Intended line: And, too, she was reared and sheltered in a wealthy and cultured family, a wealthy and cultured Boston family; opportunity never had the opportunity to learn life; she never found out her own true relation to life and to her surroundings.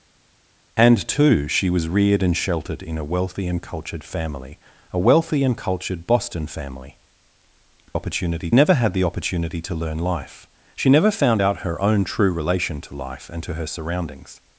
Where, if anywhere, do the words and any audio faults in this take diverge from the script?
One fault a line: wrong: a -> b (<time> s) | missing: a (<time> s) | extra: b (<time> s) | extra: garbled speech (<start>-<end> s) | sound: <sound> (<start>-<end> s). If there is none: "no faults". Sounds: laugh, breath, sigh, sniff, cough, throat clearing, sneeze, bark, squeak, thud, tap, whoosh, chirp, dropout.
no faults